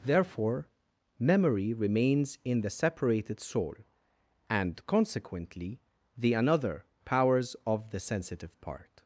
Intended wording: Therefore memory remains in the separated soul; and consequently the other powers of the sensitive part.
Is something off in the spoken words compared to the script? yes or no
yes